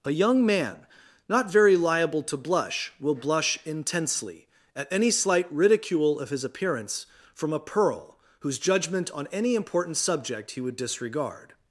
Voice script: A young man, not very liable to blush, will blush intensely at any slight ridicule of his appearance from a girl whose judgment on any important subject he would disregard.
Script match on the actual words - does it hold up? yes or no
no